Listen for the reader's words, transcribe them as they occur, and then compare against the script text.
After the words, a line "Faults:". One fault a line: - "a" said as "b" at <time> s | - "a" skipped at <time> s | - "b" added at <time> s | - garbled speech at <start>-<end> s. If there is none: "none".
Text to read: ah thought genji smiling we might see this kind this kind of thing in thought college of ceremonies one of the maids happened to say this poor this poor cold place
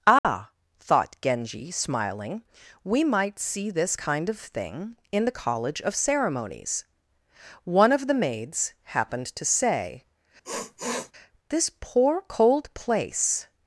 ah thought genji smiling we might see this kind of thing in the college of ceremonies one of the maids happened to say this poor cold place
Faults:
- "this kind" skipped at 4.3 s
- "thought" said as "the" at 5.2 s
- "this poor" skipped at 12.2 s